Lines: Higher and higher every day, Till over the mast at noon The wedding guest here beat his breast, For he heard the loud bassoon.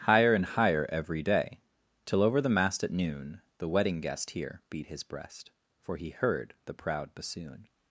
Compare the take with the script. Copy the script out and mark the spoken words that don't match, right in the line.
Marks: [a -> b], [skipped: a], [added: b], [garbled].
Higher and higher every day, Till over the mast at noon The wedding guest here beat his breast, For he heard the [loud -> proud] bassoon.